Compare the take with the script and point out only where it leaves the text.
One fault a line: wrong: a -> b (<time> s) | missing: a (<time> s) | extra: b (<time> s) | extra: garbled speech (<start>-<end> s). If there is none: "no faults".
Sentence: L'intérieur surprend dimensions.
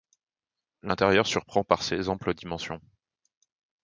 extra: par ses amples (1.6 s)